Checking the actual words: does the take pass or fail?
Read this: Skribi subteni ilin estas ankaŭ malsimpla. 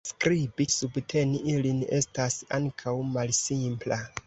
pass